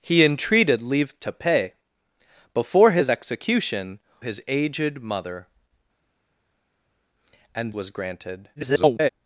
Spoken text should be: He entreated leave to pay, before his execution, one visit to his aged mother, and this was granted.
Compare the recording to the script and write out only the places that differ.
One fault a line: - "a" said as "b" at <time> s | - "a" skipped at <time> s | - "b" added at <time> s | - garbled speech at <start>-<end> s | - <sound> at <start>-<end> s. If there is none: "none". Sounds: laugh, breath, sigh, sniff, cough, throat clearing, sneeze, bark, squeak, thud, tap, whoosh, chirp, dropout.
- "one visit to" skipped at 4.0 s
- "this" skipped at 7.7 s
- garbled speech at 8.6-9.1 s